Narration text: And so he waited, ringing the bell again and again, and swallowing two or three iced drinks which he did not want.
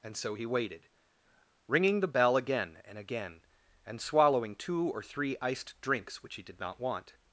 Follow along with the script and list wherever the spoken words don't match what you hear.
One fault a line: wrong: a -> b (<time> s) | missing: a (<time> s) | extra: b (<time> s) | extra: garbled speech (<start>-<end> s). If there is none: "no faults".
no faults